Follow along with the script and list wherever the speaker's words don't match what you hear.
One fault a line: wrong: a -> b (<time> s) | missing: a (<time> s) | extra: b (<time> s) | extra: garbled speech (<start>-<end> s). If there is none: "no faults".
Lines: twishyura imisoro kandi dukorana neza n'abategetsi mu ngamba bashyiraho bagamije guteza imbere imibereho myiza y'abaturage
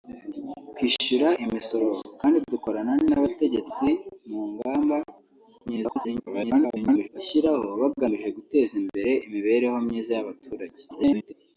missing: neza (2.9 s)
extra: garbled speech (5.7-7.1 s)
extra: garbled speech (10.9-11.3 s)